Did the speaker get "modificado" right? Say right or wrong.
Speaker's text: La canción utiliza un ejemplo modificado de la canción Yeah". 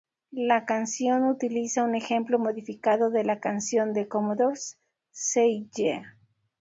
right